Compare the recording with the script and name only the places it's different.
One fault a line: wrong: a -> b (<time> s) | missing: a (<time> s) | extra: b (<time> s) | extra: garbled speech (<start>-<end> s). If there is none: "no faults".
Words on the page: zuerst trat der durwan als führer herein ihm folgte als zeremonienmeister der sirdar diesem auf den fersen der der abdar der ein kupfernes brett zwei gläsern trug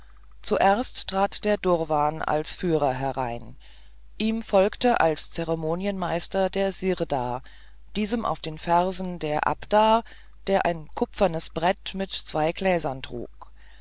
missing: der (9.4 s)
extra: mit (11.9 s)